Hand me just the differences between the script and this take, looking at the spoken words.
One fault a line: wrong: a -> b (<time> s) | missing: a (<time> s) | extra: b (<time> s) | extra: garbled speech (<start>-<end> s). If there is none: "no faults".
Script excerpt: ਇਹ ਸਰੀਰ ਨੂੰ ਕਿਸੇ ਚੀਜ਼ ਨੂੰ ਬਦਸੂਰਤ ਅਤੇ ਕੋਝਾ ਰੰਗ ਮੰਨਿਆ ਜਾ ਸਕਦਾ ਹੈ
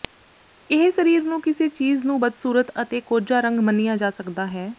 no faults